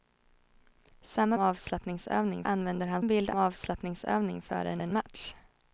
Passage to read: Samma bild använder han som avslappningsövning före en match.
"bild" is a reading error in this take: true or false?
true